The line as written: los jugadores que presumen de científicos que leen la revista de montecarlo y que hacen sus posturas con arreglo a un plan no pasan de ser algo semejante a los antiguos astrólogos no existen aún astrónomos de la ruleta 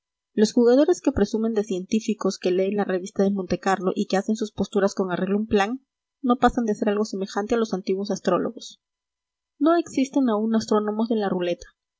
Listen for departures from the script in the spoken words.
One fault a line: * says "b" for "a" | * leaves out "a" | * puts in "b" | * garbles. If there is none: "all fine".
all fine